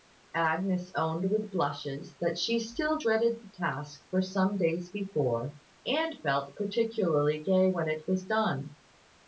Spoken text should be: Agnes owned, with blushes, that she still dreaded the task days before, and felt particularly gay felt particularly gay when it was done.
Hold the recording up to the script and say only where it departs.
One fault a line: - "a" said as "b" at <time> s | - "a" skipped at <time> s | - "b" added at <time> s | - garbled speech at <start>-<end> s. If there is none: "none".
- "for some" added at 4.1 s
- "felt particularly gay" skipped at 7.7 s